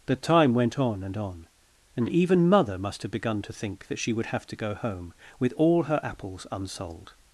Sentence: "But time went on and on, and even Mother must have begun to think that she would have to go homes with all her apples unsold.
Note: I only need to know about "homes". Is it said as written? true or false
false